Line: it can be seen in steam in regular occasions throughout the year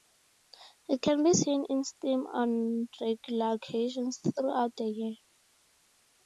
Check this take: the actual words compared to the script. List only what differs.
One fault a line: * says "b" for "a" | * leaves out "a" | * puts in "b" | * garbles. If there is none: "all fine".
* says "on" for "in"